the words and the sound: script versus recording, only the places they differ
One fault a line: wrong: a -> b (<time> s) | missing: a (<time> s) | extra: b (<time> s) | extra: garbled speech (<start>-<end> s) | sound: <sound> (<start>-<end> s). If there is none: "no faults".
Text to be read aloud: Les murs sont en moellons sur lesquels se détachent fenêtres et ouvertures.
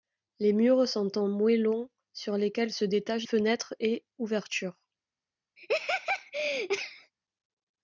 sound: laugh (5.6-7.1 s)